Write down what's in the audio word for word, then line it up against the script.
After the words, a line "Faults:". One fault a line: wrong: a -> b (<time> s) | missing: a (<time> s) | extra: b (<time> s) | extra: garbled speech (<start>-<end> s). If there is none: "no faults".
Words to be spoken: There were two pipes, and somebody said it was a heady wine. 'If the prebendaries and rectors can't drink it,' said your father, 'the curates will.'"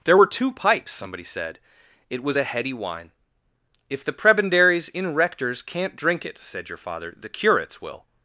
There were two pipes, somebody said it was a heady wine. 'If the prebendaries in rectors can't drink it,' said your father, 'the curates will.'"
Faults:
missing: and (0.9 s)
wrong: and -> in (4.9 s)